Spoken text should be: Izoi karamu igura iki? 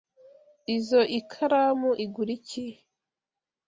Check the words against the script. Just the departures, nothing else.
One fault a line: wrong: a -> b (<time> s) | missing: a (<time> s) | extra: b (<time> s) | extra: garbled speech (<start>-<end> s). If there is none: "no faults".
no faults